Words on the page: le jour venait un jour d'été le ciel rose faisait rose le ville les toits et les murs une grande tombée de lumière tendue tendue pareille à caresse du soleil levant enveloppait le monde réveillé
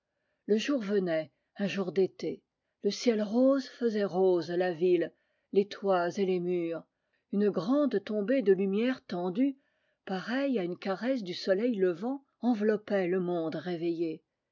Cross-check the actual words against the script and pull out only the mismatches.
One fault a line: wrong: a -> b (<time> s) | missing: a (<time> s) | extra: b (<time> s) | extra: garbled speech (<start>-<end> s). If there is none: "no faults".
wrong: le -> la (4.5 s)
missing: tendue (9.6 s)
extra: une (10.6 s)